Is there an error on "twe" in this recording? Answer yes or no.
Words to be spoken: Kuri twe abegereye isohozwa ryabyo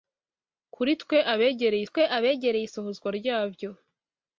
no